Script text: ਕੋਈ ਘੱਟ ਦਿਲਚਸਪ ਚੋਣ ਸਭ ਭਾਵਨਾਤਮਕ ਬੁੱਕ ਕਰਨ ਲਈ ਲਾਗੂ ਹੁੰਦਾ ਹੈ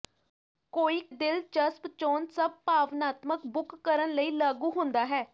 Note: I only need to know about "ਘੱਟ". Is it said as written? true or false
false